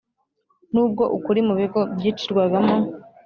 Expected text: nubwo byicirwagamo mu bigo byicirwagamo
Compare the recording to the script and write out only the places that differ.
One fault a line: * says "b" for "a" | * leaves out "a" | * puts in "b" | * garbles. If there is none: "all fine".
* says "ukuri" for "byicirwagamo"